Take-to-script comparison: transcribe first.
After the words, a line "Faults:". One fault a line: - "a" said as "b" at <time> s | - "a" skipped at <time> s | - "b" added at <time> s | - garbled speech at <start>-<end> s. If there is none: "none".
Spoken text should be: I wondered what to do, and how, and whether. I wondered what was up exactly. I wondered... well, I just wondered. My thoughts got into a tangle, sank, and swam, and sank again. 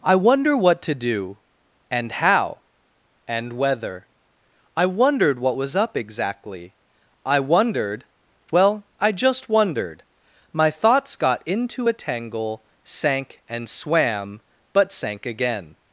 I wonder what to do, and how, and whether. I wondered what was up exactly. I wondered... well, I just wondered. My thoughts got into a tangle, sank, and swam, but sank again.
Faults:
- "wondered" said as "wonder" at 0.1 s
- "and" said as "but" at 14.7 s